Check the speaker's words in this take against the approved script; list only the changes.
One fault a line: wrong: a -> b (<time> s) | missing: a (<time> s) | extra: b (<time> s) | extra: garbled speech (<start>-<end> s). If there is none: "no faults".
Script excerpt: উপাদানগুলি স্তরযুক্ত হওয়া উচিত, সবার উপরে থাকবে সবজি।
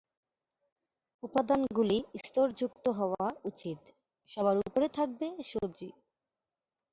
no faults